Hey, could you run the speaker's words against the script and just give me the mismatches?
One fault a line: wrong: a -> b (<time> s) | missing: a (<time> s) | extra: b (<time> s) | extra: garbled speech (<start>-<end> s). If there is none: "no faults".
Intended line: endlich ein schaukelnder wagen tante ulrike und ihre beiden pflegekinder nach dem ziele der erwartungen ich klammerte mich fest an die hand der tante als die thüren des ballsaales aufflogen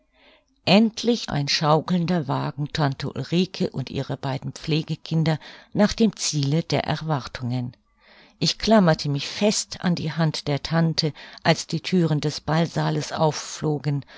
no faults